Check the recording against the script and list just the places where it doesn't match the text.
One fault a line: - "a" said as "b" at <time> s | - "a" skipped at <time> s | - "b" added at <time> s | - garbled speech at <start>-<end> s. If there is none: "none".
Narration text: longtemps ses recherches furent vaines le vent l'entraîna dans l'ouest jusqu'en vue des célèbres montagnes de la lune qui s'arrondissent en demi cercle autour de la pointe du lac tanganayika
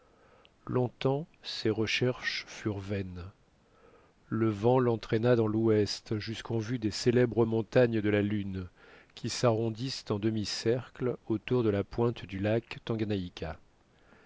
none